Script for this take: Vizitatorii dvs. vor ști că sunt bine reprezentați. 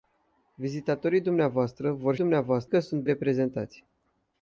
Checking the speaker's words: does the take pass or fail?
fail